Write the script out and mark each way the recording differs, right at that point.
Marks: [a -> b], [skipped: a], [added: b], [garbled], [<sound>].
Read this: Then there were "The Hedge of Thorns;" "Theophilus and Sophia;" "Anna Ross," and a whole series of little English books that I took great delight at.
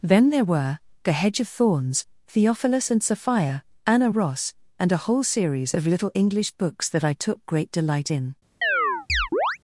Then there were "The Hedge of Thorns;" "Theophilus and Sophia;" "Anna Ross," and a whole series of little English books that I took great delight [at. -> in] [chirp]